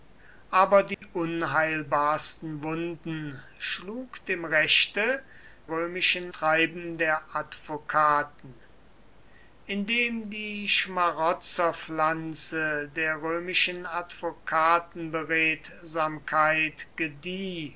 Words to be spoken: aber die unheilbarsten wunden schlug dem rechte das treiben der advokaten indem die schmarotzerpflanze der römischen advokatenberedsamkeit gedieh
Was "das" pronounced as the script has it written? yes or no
no